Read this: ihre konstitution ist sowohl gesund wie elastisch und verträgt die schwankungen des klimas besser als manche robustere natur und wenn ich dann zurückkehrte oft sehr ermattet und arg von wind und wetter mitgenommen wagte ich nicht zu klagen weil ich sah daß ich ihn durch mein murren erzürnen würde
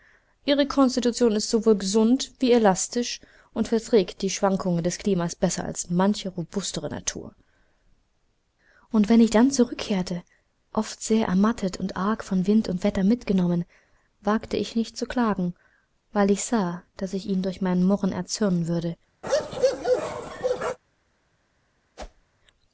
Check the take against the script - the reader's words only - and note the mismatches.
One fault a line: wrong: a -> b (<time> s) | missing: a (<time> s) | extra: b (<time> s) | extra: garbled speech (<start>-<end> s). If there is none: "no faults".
no faults